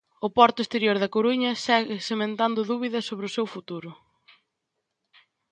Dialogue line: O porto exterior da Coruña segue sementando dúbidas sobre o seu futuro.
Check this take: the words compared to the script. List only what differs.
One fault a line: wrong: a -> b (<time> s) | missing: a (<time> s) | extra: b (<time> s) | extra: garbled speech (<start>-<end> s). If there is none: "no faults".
no faults